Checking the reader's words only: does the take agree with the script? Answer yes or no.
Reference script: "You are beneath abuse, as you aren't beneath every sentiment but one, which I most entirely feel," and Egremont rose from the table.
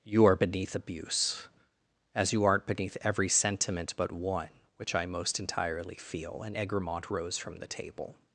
yes